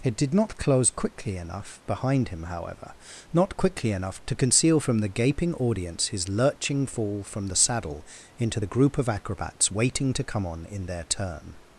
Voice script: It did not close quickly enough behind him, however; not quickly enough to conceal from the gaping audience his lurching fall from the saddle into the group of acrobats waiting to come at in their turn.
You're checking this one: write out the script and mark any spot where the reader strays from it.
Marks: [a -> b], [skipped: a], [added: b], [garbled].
It did not close quickly enough behind him, however; not quickly enough to conceal from the gaping audience his lurching fall from the saddle into the group of acrobats waiting to come [at -> on] in their turn.